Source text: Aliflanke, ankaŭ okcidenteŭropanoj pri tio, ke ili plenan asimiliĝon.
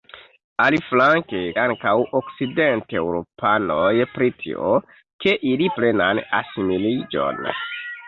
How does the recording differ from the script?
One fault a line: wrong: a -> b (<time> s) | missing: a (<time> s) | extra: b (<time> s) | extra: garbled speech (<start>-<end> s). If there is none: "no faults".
no faults